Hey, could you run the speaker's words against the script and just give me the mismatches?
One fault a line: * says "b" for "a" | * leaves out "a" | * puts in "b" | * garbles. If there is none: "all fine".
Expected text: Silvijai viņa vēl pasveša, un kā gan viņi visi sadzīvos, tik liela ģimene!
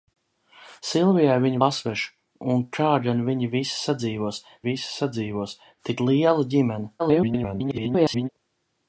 * leaves out "vēl"
* puts in "visi sadzīvos"
* garbles